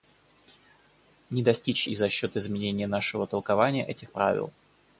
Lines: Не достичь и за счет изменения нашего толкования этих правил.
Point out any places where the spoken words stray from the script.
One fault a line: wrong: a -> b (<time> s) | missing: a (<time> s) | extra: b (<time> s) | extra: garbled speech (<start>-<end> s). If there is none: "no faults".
no faults